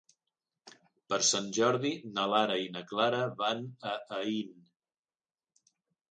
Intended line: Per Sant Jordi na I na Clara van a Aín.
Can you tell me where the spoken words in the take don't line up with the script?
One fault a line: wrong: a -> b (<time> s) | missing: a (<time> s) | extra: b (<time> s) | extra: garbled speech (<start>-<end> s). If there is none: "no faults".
extra: Lara (2.3 s)